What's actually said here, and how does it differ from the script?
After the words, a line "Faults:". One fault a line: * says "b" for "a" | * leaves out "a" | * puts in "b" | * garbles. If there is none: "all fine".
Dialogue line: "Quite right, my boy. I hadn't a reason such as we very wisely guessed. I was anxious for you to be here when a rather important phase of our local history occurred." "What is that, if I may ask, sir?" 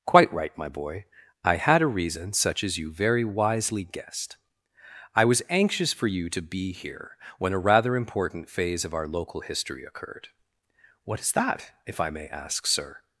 "Quite right, my boy. I had a reason such as you very wisely guessed. I was anxious for you to be here when a rather important phase of our local history occurred." "What is that, if I may ask, sir?"
Faults:
* says "had" for "hadn't"
* says "you" for "we"